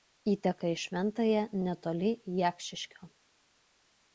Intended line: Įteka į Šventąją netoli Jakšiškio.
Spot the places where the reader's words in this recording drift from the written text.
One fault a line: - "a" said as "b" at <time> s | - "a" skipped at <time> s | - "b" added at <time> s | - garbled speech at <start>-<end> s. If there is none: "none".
none